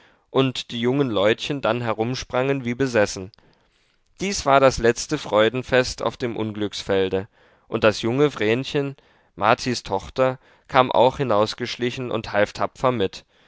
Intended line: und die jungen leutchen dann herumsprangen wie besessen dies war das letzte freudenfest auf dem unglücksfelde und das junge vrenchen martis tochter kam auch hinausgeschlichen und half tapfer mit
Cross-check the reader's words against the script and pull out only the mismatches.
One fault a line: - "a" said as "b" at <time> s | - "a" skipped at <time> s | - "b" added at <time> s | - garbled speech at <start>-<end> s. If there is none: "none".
none